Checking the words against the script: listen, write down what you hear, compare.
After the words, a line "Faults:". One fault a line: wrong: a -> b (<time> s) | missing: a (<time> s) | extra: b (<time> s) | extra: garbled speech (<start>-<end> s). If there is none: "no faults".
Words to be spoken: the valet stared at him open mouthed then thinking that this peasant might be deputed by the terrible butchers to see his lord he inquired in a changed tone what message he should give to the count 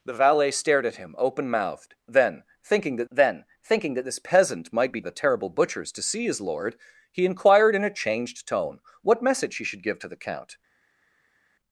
the valet stared at him open mouthed then thinking that then thinking that this peasant might be the terrible butchers to see his lord he inquired in a changed tone what message he should give to the count
Faults:
extra: then thinking that (3.1 s)
missing: deputed by (5.0 s)